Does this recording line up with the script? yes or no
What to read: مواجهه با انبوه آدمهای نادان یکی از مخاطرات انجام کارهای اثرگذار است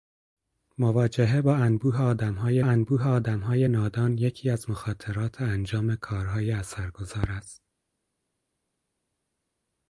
no